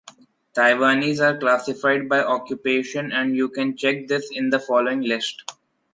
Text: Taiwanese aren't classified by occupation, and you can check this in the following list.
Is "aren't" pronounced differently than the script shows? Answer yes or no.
yes